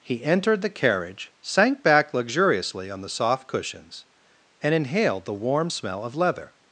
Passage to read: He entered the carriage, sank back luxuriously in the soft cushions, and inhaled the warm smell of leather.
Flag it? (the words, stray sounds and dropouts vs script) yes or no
yes